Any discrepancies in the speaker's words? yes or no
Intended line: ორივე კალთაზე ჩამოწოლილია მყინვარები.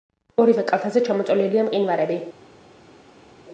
no